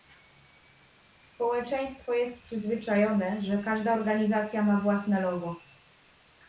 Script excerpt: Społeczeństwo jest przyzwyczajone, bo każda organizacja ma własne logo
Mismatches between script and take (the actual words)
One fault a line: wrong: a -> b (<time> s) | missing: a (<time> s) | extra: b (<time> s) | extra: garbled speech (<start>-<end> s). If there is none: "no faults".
wrong: bo -> że (3.4 s)